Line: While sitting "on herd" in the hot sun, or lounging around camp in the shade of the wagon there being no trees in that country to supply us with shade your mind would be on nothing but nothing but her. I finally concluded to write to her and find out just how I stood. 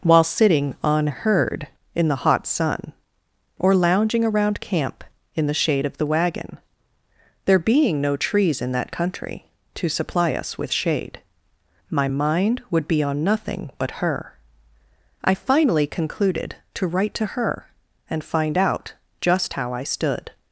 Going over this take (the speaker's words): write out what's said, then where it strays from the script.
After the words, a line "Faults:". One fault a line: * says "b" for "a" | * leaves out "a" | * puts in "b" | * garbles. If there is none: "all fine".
While sitting "on herd" in the hot sun, or lounging around camp in the shade of the wagon there being no trees in that country to supply us with shade my mind would be on nothing but her. I finally concluded to write to her and find out just how I stood.
Faults:
* says "my" for "your"
* leaves out "nothing but"